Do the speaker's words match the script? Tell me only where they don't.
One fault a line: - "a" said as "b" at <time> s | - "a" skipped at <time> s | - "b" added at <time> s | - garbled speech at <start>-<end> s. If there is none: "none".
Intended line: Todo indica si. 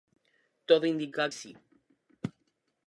none